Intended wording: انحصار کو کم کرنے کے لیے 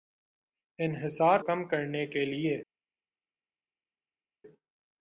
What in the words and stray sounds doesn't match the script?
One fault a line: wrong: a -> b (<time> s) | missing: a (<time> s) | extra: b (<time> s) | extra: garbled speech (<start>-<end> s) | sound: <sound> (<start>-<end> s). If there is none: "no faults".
missing: کو (1.4 s)